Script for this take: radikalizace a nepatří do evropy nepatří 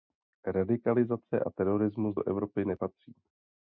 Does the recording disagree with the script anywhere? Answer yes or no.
yes